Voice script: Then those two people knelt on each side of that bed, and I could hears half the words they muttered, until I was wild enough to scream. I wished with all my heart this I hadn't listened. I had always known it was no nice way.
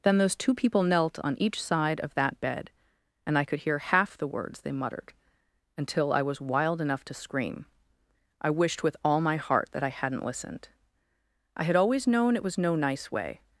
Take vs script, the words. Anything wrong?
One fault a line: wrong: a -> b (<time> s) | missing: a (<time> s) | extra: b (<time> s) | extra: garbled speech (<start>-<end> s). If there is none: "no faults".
wrong: hears -> hear (3.6 s)
wrong: this -> that (9.7 s)